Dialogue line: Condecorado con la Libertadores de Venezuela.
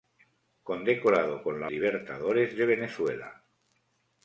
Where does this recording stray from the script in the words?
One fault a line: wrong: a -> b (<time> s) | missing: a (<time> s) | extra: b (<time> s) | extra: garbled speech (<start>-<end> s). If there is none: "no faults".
no faults